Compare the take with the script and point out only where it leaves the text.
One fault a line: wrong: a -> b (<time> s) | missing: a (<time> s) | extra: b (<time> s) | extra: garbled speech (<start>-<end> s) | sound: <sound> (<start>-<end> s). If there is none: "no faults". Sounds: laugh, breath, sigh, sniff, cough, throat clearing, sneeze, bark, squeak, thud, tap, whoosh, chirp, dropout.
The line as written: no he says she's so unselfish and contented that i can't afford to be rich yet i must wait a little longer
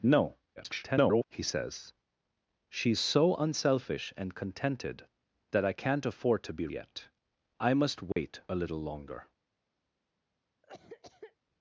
extra: garbled speech (0.6-1.2 s)
missing: rich (6.7 s)
sound: dropout (8.1-8.2 s)
sound: cough (10.6-11.4 s)